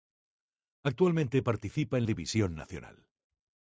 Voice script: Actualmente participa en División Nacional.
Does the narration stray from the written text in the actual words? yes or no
no